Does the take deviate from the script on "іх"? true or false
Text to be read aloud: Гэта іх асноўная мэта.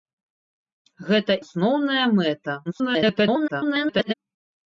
true